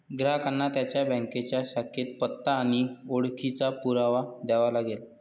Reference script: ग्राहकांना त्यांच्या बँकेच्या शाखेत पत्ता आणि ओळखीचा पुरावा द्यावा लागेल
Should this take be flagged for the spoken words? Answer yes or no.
no